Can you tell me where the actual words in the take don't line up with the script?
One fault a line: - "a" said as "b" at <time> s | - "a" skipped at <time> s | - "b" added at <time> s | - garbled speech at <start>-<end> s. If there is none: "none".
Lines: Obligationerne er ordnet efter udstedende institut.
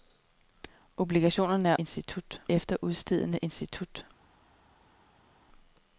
- "ordnet" said as "institut" at 1.7 s